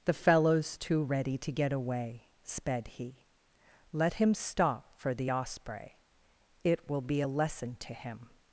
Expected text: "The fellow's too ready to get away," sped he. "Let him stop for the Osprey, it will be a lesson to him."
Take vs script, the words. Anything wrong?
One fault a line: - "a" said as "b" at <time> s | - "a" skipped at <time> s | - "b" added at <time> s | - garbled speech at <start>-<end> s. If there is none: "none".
none